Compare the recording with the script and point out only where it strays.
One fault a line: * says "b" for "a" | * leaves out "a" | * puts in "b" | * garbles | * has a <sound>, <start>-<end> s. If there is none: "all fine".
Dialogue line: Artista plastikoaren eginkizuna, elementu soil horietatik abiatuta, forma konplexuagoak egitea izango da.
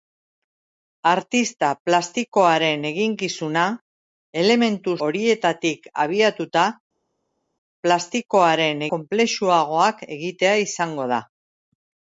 * leaves out "soil"
* says "plastikoaren" for "forma"